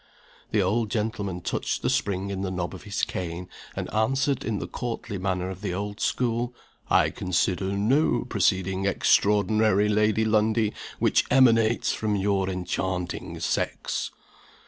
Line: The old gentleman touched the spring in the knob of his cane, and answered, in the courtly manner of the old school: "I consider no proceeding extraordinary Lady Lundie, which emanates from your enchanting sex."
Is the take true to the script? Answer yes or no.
yes